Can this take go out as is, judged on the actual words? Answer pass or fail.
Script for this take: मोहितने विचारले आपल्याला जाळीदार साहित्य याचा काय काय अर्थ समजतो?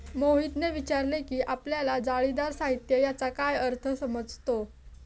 fail